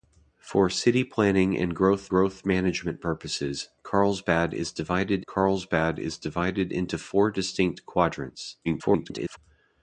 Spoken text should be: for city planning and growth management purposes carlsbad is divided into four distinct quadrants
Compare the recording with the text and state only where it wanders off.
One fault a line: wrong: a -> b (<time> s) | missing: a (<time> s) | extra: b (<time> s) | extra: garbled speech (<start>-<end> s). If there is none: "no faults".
extra: growth (2.1 s)
extra: carlsbad is divided (5.3 s)
extra: garbled speech (8.6-9.4 s)